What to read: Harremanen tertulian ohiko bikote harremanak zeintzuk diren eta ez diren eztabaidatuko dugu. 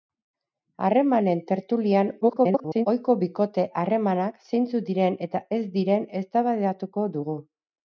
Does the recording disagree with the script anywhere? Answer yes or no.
yes